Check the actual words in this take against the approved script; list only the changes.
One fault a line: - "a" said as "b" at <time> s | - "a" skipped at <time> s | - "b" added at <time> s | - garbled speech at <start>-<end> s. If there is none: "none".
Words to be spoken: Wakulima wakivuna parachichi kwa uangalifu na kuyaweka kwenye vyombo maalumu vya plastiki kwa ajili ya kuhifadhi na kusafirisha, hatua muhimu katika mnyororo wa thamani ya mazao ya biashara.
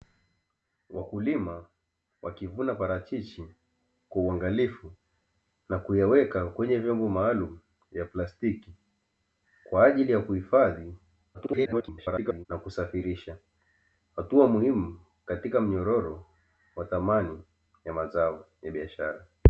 - garbled speech at 11.3-12.5 s